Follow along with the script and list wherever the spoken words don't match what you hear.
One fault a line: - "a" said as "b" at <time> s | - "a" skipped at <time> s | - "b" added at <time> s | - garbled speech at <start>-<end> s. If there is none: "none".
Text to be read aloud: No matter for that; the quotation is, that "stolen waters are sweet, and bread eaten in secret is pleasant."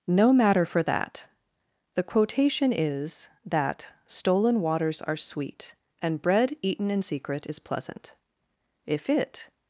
- "If it" added at 8.9 s